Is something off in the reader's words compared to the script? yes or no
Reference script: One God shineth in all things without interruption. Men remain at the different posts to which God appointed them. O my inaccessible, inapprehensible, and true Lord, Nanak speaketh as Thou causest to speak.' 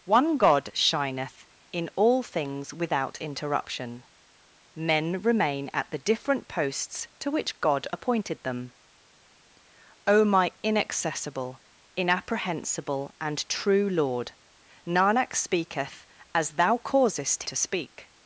no